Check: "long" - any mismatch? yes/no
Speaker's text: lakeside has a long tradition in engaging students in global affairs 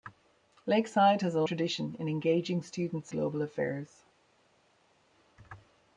yes